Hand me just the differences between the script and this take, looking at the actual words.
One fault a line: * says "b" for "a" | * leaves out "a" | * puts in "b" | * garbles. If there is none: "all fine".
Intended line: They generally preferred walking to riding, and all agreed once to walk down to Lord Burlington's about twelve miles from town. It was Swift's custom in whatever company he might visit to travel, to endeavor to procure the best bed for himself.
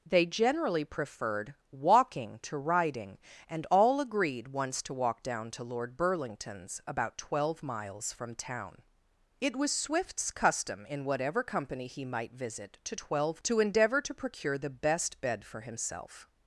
* says "twelve" for "travel"